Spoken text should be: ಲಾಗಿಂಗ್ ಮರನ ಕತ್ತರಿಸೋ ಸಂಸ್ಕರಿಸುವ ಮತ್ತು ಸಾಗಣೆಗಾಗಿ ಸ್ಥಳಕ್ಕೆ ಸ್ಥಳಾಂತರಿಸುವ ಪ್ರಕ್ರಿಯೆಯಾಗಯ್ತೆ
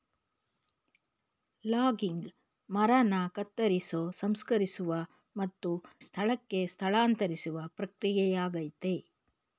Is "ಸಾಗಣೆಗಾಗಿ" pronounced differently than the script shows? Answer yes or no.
yes